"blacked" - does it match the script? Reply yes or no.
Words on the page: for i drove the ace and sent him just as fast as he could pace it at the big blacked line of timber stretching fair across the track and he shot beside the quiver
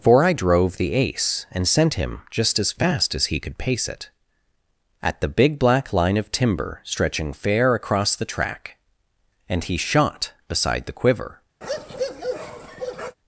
no